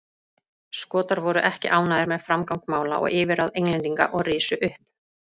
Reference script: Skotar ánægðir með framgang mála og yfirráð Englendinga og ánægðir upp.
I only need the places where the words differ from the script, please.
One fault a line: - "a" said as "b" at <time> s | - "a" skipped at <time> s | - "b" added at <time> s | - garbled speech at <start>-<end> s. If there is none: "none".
- "voru ekki" added at 1.2 s
- "ánægðir" said as "risu" at 4.3 s